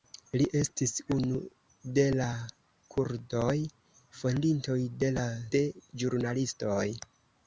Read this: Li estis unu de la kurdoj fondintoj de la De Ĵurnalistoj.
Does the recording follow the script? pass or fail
pass